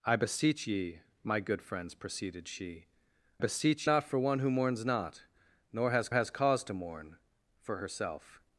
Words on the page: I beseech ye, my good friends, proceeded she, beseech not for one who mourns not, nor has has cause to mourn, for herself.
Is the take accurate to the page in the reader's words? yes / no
yes